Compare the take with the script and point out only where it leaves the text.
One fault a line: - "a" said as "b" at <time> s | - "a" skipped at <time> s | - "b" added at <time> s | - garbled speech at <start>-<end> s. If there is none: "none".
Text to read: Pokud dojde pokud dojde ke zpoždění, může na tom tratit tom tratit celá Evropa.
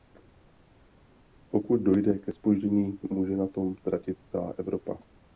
- "pokud dojde" skipped at 2.2 s
- "tom tratit" skipped at 4.2 s